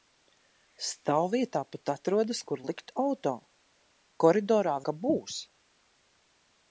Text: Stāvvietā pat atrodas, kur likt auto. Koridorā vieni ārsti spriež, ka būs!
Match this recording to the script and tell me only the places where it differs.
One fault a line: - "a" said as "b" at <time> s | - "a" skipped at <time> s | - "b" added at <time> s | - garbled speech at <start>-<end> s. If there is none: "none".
- "vieni ārsti spriež" skipped at 4.8 s